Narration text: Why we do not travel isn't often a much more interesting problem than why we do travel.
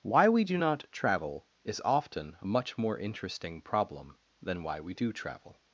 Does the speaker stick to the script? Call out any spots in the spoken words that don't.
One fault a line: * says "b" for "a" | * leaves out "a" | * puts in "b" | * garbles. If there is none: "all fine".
* says "is" for "isn't"